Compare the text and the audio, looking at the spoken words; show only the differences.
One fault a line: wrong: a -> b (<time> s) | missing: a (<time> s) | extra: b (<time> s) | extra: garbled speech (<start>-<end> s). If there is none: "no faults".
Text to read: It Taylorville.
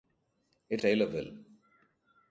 no faults